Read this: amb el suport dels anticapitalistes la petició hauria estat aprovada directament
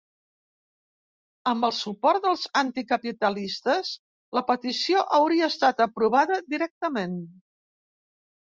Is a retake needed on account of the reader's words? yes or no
no